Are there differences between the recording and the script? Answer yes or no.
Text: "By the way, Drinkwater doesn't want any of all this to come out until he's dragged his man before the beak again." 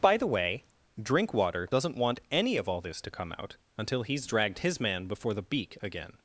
no